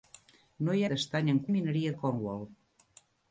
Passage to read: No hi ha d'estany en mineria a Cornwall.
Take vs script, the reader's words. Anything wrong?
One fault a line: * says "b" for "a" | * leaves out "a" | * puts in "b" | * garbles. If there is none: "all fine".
all fine